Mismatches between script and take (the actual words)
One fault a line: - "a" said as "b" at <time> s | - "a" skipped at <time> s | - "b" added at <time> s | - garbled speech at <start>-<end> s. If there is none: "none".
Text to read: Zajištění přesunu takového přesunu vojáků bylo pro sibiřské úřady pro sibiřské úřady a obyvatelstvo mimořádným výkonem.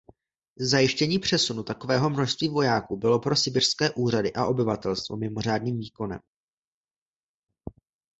- "přesunu" said as "množství" at 2.1 s
- "pro sibiřské úřady" skipped at 4.3 s